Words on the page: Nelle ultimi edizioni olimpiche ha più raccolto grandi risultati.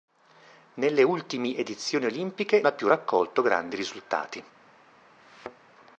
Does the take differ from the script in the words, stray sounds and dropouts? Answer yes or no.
yes